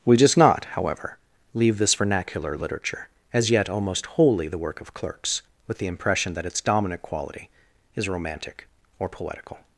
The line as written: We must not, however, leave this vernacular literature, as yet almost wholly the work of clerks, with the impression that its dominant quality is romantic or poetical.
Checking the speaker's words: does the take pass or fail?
fail